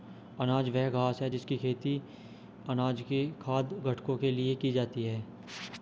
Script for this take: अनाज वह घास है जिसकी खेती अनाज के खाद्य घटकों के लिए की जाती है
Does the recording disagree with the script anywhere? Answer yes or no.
no